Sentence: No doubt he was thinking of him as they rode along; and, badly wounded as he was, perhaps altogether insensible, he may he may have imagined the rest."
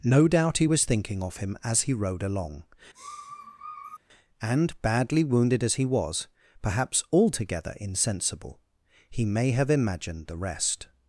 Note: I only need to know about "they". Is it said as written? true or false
false